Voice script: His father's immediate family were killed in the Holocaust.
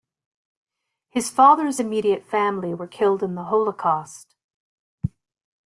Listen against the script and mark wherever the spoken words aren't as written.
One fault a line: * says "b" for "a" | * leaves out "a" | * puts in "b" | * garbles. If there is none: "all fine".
all fine